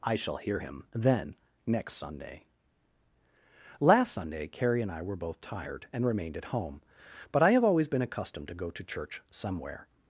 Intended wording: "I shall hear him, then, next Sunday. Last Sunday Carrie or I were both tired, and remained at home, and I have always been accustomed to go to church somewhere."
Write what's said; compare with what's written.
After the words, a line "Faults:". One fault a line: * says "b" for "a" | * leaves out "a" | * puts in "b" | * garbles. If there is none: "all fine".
"I shall hear him, then, next Sunday. Last Sunday Carrie and I were both tired, and remained at home, but I have always been accustomed to go to church somewhere."
Faults:
* says "and" for "or"
* says "but" for "and"